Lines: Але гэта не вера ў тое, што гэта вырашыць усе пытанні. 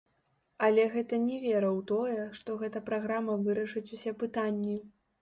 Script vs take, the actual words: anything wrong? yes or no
yes